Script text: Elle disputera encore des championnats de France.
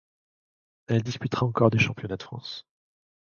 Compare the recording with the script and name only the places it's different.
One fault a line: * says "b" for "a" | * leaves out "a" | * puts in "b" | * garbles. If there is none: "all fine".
all fine